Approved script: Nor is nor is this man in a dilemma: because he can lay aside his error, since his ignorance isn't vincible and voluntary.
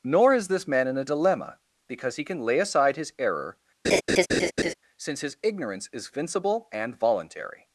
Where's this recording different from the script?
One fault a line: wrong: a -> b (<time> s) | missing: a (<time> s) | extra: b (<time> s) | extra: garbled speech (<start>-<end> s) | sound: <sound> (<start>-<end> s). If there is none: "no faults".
missing: nor is (0.5 s)
sound: laugh (3.8-4.7 s)
wrong: isn't -> is (5.9 s)